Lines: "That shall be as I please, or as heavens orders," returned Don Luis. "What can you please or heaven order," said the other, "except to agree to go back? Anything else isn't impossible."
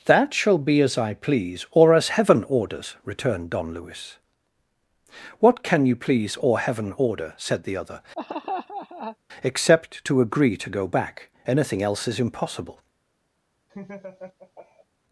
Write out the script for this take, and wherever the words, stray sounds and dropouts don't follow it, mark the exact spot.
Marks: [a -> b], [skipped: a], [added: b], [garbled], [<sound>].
"That shall be as I please, or as [heavens -> heaven] orders," returned Don Luis. "What can you please or heaven order," said the other, [laugh] "except to agree to go back? Anything else [isn't -> is] impossible." [laugh]